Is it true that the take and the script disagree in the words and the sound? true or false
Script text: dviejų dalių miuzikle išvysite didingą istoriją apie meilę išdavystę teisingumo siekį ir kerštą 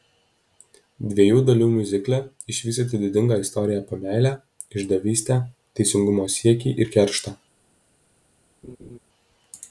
true